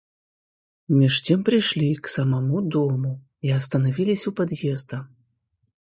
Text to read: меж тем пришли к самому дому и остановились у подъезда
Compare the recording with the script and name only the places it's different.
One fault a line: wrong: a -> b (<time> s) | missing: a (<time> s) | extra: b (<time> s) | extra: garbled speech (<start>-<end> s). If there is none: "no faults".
no faults